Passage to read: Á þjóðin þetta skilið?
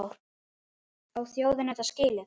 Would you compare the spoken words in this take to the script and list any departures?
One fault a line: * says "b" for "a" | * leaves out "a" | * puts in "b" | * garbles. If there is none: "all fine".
all fine